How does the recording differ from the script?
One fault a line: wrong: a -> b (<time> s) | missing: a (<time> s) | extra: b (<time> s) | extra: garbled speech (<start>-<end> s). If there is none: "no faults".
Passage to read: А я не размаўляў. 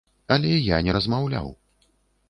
wrong: А -> Але (0.3 s)